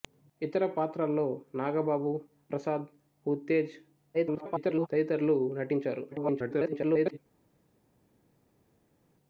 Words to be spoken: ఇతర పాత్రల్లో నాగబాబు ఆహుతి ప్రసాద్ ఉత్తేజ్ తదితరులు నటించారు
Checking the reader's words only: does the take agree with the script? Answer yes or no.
no